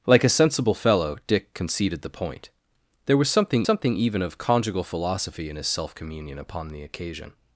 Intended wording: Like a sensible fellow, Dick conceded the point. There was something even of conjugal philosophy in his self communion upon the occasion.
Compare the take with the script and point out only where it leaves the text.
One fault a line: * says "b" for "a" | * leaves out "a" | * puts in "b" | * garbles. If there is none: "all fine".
* puts in "something"